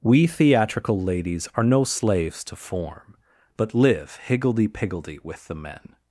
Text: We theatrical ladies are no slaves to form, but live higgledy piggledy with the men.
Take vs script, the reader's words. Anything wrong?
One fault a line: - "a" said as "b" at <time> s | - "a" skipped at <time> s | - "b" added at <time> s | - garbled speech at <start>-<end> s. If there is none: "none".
none